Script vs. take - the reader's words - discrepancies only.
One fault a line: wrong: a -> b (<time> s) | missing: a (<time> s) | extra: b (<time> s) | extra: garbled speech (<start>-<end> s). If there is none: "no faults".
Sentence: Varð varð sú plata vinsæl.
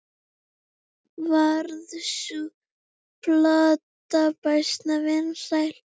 missing: varð (1.9 s)
extra: býsna (4.4 s)